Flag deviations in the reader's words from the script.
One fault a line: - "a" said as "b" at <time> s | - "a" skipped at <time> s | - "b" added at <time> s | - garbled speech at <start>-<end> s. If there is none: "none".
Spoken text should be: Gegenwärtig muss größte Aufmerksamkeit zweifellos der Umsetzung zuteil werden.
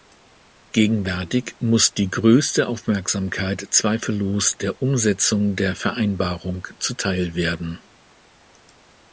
- "die" added at 1.9 s
- "der Vereinbarung" added at 5.6 s